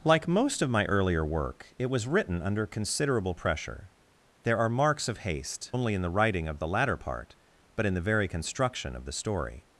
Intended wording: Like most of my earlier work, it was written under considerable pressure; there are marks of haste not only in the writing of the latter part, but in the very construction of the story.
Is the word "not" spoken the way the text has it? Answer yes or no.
no